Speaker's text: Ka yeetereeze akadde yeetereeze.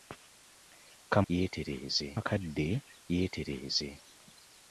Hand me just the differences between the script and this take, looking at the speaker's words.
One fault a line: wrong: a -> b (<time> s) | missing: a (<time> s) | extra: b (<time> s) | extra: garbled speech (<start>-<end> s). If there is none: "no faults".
no faults